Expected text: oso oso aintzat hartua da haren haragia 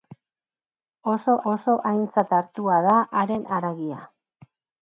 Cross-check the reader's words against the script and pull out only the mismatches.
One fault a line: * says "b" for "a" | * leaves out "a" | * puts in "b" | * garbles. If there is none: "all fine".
all fine